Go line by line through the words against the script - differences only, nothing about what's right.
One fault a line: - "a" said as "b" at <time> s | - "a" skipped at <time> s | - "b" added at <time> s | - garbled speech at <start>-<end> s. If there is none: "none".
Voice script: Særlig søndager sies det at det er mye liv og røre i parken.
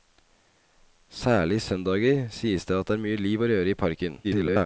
- garbled speech at 4.2-4.7 s